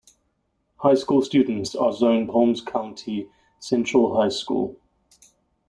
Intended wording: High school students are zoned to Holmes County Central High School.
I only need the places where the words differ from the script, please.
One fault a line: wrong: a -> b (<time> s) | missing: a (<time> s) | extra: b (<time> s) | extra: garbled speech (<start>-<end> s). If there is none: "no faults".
missing: to (2.3 s)